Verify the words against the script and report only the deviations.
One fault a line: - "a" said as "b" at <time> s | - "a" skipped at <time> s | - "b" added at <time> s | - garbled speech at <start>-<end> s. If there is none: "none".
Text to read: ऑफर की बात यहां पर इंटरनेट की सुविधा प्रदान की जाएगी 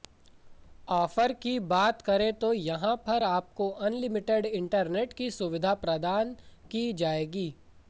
- "करें तो" added at 2.0 s
- "आपको अनलिमिटेड" added at 3.2 s